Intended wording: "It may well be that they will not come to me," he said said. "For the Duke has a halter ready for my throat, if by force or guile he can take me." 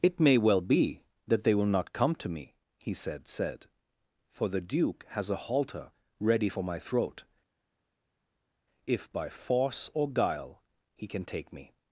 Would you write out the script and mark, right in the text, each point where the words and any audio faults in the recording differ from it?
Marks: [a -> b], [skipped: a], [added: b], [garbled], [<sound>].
"It may well be that they will not come to me," he said said. "For the Duke has a halter ready for my throat, if by force or guile he can take me."